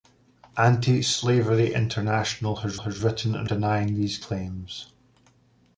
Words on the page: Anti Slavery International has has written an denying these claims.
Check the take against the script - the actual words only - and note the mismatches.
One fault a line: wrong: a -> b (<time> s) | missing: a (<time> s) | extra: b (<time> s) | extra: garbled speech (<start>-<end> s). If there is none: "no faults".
no faults